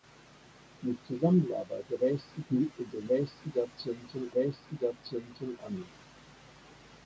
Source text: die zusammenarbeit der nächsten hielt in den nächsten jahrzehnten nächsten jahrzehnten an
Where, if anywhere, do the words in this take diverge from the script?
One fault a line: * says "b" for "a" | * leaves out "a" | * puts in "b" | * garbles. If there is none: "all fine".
all fine